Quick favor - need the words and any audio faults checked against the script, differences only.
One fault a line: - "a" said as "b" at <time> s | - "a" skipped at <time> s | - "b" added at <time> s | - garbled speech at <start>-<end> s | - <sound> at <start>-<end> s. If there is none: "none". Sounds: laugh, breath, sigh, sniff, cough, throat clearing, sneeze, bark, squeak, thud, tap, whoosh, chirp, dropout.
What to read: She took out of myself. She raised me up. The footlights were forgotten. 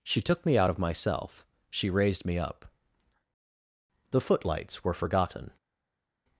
- "me" added at 0.5 s